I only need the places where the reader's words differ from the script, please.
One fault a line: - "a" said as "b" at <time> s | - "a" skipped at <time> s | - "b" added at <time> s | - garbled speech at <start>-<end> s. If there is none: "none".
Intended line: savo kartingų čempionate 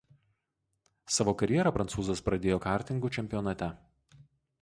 - "karjerą prancūzas pradėjo" added at 1.4 s